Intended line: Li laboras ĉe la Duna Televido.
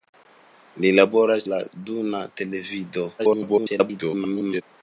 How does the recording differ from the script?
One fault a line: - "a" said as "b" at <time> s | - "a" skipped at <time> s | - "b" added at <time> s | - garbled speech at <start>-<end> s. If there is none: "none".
- "ĉe" skipped at 1.5 s
- garbled speech at 3.2-4.6 s